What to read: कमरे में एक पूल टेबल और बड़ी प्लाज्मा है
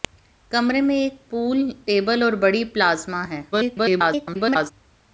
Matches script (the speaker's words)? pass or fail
fail